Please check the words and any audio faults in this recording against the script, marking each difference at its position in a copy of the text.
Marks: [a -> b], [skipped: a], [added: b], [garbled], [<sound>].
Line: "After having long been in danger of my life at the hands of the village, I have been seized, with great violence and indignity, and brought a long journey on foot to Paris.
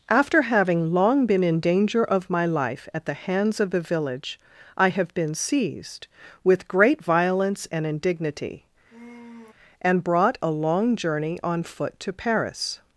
"After having long been in danger of my life at the hands of the village, I have been seized, with great violence and indignity, [sigh] and brought a long journey on foot to Paris.